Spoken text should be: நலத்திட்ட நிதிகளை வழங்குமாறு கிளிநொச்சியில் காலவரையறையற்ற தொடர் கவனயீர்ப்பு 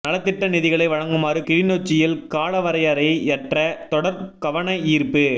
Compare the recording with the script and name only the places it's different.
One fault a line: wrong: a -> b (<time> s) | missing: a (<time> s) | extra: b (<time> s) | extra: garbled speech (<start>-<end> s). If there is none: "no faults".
no faults